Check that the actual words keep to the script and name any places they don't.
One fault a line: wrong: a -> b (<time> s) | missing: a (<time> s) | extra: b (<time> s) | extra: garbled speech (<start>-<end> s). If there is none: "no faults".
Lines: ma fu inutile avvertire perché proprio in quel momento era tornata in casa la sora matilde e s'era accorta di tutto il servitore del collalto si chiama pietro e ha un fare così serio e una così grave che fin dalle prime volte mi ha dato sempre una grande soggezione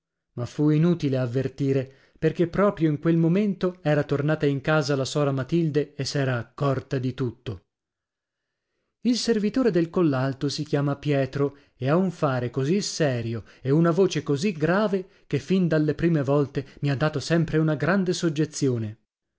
extra: voce (13.9 s)